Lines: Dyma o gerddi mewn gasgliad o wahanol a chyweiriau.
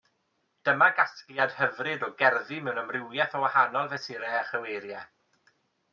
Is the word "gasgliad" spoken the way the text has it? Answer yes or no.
no